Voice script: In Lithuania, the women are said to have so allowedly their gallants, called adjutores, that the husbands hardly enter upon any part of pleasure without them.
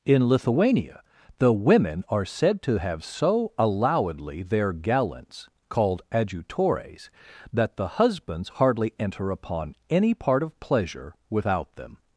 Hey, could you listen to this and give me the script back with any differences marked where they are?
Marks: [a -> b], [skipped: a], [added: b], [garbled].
In Lithuania, the women are said to have so allowedly their gallants, called adjutores, that the husbands hardly enter upon any part of pleasure without them.